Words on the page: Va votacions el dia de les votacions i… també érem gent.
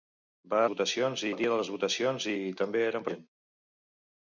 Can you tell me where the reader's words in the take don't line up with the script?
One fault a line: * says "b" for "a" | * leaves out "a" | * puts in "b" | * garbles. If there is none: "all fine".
all fine